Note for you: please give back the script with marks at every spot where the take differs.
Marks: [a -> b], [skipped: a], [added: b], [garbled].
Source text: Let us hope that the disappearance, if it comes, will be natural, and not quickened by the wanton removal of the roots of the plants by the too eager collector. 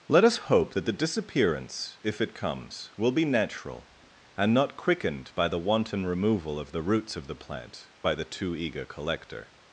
Let us hope that the disappearance, if it comes, will be natural, and not quickened by the wanton removal of the roots of the [plants -> plant] by the too eager collector.